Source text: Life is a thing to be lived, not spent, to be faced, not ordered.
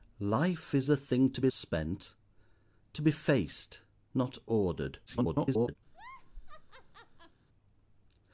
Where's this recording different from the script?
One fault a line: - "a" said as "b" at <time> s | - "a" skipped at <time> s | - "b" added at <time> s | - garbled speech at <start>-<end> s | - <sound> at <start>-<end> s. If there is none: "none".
- "lived not" skipped at 1.5 s
- garbled speech at 5.1-5.8 s
- laugh at 5.9-7.4 s